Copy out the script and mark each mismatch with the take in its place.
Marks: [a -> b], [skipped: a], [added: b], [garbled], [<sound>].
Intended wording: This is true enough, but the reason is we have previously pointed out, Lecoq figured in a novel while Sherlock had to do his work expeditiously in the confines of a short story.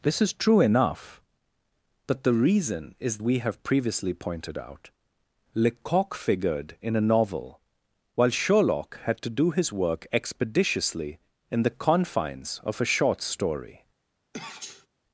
This is true enough, but the reason is we have previously pointed out, Lecoq figured in a novel while Sherlock had to do his work expeditiously in the confines of a short story. [sneeze]